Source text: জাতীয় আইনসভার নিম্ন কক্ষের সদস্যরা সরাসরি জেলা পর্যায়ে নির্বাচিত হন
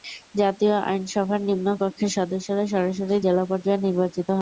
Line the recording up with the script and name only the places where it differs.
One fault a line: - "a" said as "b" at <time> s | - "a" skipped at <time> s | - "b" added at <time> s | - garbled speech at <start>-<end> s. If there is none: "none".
none